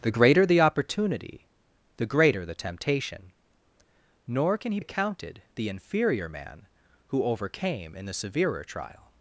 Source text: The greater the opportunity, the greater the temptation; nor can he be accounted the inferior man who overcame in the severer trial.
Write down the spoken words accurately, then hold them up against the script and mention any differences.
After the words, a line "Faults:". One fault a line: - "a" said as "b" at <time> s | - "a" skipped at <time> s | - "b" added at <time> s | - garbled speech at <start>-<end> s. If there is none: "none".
The greater the opportunity, the greater the temptation; nor can he accounted the inferior man who overcame in the severer trial.
Faults:
- "be" skipped at 4.8 s